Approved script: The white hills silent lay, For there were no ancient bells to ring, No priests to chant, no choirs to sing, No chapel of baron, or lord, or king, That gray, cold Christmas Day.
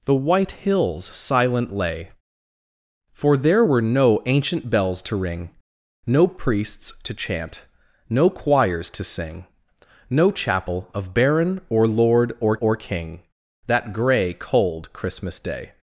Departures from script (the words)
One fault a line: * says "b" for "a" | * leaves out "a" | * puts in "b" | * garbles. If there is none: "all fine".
* puts in "or"